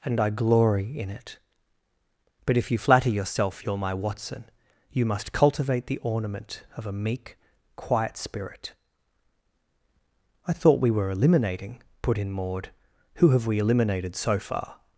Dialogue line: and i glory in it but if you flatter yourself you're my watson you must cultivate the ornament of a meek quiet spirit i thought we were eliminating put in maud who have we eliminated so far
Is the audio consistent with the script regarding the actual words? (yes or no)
yes